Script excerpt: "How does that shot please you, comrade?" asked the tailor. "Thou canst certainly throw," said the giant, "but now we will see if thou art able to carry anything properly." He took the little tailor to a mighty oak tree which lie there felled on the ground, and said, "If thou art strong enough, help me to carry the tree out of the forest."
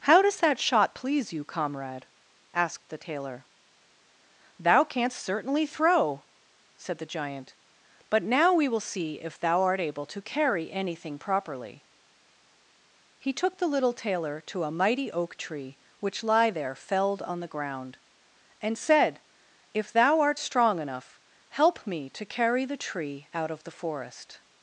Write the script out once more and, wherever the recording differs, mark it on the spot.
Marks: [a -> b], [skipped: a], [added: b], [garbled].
"How does that shot please you, comrade?" asked the tailor. "Thou canst certainly throw," said the giant, "but now we will see if thou art able to carry anything properly." He took the little tailor to a mighty oak tree which lie there felled on the ground, and said, "If thou art strong enough, help me to carry the tree out of the forest."